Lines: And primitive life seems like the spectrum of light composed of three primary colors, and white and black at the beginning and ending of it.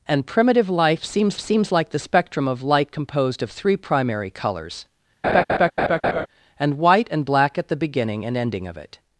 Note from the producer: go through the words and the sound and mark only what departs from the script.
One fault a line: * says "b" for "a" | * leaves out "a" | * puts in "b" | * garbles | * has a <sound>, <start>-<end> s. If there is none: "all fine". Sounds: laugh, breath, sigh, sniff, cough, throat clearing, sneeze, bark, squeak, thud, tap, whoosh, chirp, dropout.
* puts in "seems"
* has a laugh, 5.2-6.3 s